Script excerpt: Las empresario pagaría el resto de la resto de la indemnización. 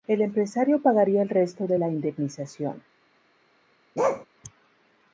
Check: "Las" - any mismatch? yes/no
yes